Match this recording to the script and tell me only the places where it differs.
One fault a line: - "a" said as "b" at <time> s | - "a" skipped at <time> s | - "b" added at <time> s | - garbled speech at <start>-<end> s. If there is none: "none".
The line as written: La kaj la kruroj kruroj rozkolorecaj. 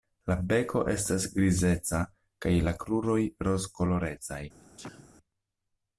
- "beko estas grizeca" added at 0.5 s
- "kruroj" skipped at 3.2 s